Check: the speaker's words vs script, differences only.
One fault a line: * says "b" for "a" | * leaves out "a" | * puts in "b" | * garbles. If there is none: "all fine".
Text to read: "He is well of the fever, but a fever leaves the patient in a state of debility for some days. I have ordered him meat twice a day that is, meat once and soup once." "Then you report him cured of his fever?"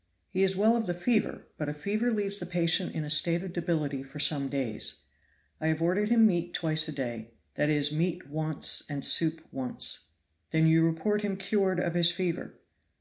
all fine